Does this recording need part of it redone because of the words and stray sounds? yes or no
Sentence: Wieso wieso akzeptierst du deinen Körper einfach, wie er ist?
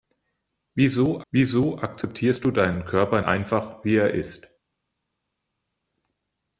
no